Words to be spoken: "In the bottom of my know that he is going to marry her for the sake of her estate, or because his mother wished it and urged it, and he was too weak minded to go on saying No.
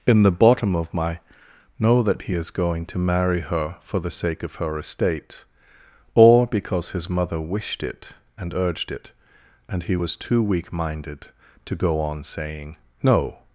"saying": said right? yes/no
yes